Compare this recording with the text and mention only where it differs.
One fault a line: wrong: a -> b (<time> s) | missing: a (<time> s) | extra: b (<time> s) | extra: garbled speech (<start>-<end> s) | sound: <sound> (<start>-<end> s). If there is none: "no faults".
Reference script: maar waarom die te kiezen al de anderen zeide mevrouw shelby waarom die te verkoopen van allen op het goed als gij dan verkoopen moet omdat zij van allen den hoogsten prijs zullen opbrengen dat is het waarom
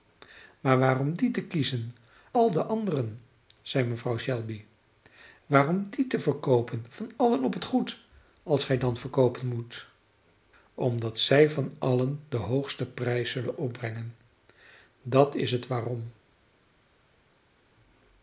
no faults